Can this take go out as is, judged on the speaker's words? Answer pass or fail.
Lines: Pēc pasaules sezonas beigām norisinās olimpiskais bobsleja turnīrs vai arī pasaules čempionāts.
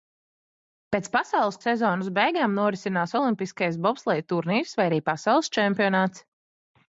pass